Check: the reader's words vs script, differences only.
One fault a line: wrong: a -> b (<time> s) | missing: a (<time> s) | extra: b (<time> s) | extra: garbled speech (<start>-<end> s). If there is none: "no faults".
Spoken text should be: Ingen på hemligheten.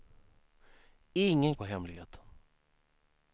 no faults